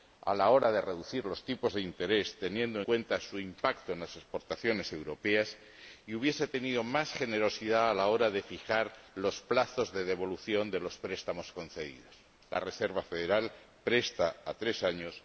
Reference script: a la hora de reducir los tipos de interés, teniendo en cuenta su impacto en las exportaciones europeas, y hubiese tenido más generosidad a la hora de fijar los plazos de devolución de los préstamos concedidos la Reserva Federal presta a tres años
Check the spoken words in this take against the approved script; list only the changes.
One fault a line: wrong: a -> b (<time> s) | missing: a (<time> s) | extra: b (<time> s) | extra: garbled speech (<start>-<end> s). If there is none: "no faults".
missing: en (2.8 s)